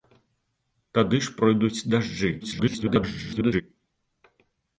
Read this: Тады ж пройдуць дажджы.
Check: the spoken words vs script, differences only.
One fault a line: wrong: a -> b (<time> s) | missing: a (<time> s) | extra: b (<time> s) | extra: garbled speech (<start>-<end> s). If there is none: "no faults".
extra: garbled speech (2.4-3.6 s)